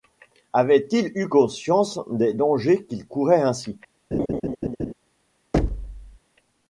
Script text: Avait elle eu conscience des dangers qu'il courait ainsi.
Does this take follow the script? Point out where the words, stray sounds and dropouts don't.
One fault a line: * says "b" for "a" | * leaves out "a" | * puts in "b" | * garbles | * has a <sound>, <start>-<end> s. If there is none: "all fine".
* says "il" for "elle"
* has a laugh, 4.1-4.9 s
* has a thud, 5.5-6.2 s